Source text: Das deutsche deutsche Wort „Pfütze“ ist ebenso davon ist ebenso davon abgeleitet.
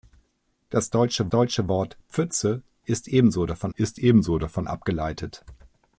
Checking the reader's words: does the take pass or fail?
pass